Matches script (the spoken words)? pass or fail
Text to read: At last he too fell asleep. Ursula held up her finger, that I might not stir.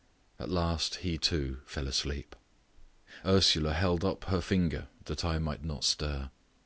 pass